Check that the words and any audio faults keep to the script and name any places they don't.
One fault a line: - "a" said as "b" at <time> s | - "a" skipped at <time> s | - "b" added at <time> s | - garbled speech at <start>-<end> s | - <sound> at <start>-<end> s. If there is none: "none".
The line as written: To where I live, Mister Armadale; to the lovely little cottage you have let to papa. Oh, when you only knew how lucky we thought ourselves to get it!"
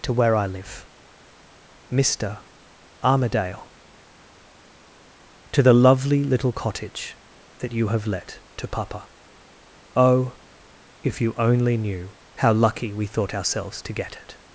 - "that" added at 7.6 s
- "when" said as "if" at 11.0 s